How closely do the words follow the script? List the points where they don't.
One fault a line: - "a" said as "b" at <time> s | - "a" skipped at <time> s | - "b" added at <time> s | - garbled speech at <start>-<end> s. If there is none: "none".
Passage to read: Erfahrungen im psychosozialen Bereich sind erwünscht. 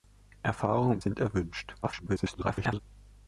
- "psychosozialen Bereich" skipped at 1.0 s
- garbled speech at 1.8-2.8 s